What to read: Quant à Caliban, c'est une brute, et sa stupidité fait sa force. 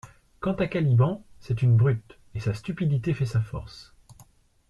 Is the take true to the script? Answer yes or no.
yes